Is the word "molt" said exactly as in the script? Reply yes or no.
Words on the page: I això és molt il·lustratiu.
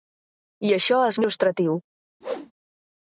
no